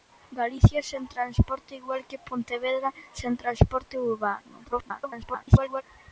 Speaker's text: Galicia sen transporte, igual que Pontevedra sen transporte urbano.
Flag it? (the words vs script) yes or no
yes